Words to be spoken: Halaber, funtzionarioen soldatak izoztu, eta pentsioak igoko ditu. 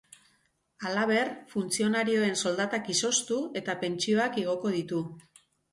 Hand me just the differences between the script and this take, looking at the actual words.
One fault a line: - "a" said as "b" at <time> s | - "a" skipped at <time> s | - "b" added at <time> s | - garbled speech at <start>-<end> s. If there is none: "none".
none